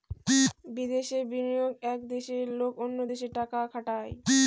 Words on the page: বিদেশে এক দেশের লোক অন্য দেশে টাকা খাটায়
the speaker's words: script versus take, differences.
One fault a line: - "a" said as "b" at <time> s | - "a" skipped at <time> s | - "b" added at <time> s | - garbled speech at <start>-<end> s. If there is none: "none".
- "বিনিয়োগ" added at 1.3 s